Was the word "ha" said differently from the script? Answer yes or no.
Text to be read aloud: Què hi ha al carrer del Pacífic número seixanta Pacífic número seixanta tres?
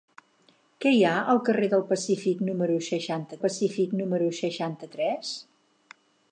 no